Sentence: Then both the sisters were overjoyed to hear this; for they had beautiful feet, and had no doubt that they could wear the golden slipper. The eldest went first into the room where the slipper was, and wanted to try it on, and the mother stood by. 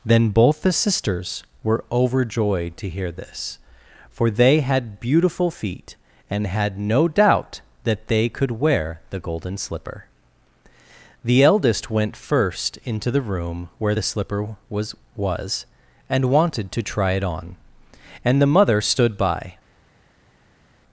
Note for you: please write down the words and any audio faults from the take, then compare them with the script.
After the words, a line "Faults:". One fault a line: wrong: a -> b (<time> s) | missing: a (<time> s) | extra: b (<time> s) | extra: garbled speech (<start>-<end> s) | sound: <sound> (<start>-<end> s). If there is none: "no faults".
Then both the sisters were overjoyed to hear this; for they had beautiful feet, and had no doubt that they could wear the golden slipper. The eldest went first into the room where the slipper was was, and wanted to try it on, and the mother stood by.
Faults:
extra: was (15.1 s)